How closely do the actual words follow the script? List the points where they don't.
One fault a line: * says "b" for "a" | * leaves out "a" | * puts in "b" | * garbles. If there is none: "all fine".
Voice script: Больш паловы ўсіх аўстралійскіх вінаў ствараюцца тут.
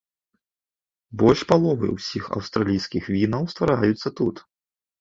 all fine